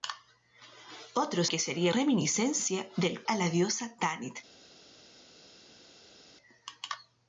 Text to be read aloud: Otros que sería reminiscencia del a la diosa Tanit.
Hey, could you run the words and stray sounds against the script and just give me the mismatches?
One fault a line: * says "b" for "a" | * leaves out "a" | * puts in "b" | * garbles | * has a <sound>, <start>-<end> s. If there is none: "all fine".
all fine